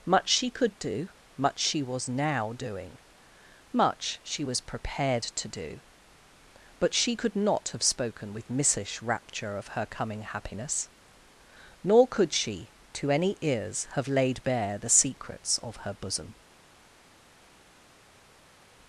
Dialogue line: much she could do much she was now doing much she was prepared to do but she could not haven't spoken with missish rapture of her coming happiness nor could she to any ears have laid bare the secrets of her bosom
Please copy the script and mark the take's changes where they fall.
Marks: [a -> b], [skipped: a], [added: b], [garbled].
much she could do much she was now doing much she was prepared to do but she could not [haven't -> have] spoken with missish rapture of her coming happiness nor could she to any ears have laid bare the secrets of her bosom